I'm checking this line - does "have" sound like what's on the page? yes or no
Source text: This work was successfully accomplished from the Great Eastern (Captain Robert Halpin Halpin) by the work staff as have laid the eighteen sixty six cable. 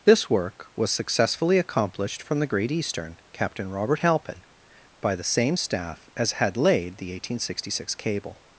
no